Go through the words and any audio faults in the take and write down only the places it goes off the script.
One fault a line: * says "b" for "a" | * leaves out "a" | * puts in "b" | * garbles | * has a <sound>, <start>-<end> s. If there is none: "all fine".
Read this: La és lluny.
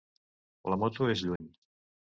* puts in "moto"
* has a dropout, 1.4-1.4 s